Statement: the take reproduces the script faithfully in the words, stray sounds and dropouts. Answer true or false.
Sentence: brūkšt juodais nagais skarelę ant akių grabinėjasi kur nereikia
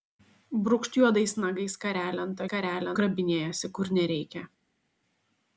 false